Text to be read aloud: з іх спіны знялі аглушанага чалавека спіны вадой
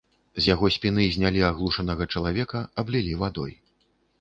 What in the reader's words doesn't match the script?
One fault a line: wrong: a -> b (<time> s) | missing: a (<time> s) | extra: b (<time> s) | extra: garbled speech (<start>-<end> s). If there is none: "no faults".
wrong: іх -> яго (0.5 s)
wrong: спіны -> аблілі (2.8 s)